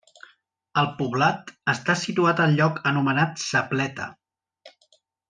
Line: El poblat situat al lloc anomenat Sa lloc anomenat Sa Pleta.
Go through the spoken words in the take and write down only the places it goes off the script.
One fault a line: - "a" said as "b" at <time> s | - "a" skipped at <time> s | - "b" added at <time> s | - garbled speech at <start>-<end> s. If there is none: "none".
- "està" added at 1.8 s
- "lloc anomenat Sa" skipped at 3.6 s